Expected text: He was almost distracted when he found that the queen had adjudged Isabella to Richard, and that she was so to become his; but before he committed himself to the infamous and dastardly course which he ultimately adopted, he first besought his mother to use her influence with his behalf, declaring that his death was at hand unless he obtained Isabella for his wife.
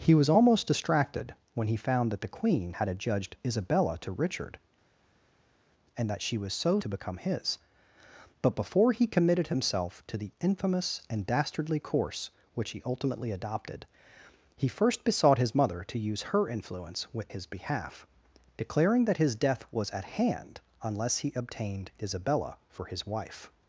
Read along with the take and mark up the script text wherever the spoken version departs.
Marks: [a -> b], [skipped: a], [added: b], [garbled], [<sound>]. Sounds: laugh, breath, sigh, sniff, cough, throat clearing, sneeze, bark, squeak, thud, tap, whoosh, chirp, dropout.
He was almost distracted when he found that the queen had adjudged Isabella to Richard, and that she was so to become his; but before he committed himself to the infamous and dastardly course which he ultimately adopted, he first besought his mother to use her influence with his behalf, declaring that his death was at hand unless he obtained Isabella for his wife.